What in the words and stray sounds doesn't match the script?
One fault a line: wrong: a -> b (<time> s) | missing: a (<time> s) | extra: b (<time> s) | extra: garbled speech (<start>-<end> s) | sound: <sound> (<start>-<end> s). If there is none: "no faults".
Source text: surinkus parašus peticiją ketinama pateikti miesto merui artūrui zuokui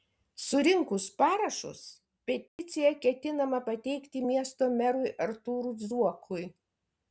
sound: dropout (2.5-2.6 s)